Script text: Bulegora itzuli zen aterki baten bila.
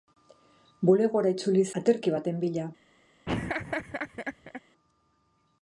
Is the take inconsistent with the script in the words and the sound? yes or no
yes